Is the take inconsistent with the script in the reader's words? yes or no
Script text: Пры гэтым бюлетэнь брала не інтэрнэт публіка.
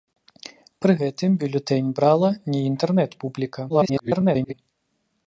yes